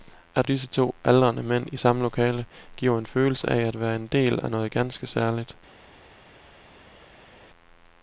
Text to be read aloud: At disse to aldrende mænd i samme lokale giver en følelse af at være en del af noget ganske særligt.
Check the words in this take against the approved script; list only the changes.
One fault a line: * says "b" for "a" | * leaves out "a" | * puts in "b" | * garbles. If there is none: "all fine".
all fine